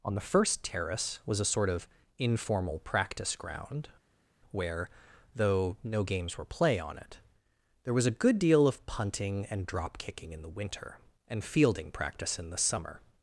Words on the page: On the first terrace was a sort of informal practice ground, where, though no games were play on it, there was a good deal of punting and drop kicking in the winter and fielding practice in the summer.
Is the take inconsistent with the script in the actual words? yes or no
no